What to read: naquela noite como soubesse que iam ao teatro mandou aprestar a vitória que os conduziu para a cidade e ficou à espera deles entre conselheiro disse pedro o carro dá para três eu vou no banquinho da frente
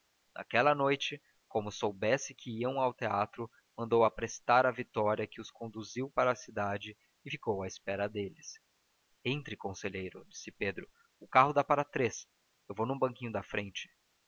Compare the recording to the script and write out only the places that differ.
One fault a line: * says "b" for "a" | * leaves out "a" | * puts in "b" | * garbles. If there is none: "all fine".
all fine